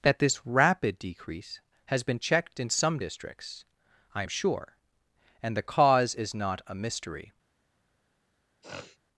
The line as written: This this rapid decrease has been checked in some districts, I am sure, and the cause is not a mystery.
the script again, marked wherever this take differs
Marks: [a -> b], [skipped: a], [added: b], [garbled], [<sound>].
[This -> That] this rapid decrease has been checked in some districts, I am sure, and the cause is not a mystery. [sniff]